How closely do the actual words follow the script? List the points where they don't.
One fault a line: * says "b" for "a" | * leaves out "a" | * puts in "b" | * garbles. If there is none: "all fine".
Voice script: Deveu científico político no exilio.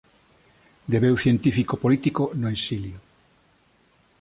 all fine